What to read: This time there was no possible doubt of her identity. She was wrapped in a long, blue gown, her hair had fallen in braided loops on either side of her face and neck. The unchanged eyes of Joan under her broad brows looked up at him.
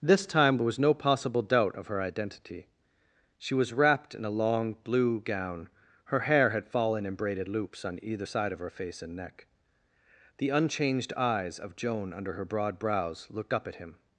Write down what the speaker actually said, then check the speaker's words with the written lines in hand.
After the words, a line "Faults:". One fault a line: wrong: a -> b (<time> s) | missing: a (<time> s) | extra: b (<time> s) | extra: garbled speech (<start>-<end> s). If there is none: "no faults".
This time there was no possible doubt of her identity. She was wrapped in a long, blue gown, her hair had fallen in braided loops on either side of her face and neck. The unchanged eyes of Joan under her broad brows looked up at him.
Faults:
no faults